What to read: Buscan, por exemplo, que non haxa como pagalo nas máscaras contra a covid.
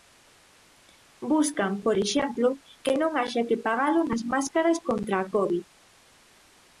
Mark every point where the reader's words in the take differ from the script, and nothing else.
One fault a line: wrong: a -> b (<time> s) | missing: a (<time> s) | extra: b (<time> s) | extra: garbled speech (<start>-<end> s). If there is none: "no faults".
wrong: como -> que (3.5 s)